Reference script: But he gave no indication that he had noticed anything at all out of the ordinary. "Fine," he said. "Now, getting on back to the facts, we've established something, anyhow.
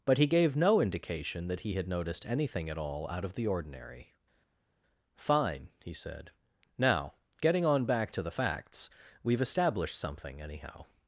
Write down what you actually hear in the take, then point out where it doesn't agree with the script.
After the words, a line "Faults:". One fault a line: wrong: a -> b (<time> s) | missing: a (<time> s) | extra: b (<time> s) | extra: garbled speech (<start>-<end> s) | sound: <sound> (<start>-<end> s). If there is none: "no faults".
But he gave no indication that he had noticed anything at all out of the ordinary. "Fine," he said. "Now, getting on back to the facts, we've established something, anyhow.
Faults:
no faults